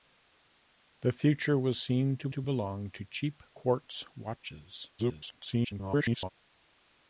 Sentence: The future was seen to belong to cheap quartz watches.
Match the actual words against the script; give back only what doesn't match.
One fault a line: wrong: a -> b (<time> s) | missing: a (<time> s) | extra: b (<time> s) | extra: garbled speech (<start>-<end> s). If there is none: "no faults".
extra: to (2.3 s)
extra: garbled speech (5.0-6.3 s)